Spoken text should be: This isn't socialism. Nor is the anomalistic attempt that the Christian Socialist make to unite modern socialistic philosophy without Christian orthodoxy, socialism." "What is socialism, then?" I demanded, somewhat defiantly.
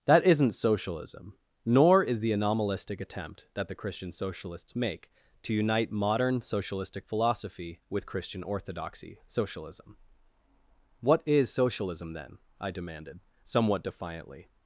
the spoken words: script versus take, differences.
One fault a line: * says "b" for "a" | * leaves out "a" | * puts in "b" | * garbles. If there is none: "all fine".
* says "That" for "This"
* says "Socialists" for "Socialist"
* says "with" for "without"